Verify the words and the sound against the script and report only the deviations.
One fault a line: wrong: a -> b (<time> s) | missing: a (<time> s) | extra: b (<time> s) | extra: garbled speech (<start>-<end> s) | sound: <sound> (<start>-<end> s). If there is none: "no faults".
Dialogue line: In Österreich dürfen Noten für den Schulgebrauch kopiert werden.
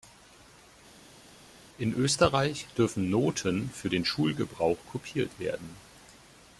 no faults